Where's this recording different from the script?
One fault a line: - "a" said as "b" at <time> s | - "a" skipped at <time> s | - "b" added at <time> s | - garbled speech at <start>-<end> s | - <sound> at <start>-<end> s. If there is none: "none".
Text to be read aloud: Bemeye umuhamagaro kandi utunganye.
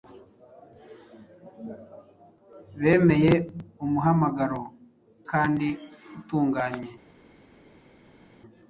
none